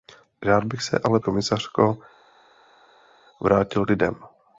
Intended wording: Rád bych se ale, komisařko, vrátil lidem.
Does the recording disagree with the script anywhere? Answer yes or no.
no